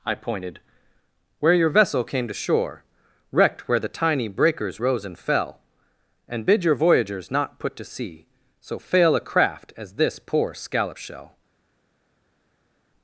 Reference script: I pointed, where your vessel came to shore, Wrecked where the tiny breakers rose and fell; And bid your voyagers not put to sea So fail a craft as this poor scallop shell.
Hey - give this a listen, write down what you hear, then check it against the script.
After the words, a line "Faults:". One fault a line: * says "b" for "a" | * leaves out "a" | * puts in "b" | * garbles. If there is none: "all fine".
I pointed, where your vessel came to shore, Wrecked where the tiny breakers rose and fell; And bid your voyagers not put to sea So fail a craft as this poor scallop shell.
Faults:
all fine